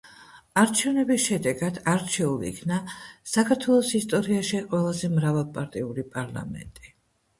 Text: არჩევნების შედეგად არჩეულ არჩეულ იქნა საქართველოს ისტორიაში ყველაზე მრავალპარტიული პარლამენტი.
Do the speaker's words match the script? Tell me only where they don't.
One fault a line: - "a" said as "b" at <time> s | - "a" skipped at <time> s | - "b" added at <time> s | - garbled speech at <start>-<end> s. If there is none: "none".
- "არჩეულ" skipped at 2.5 s